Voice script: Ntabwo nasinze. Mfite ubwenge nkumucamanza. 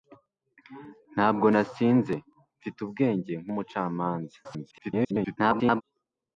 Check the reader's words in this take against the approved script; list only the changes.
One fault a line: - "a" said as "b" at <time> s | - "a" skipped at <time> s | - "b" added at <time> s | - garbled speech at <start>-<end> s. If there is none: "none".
- garbled speech at 4.4-5.8 s